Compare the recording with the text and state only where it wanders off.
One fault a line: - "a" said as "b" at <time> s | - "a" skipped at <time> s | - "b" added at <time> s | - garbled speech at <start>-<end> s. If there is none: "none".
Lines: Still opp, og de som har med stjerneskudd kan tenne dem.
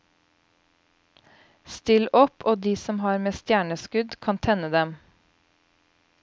none